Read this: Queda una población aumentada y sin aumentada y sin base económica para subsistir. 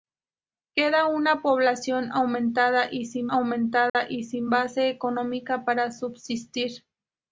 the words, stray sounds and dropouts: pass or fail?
fail